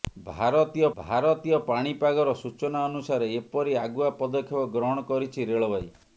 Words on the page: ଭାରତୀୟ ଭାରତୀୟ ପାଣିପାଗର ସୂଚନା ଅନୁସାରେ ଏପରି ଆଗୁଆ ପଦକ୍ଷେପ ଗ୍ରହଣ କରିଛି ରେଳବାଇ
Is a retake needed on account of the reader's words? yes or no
no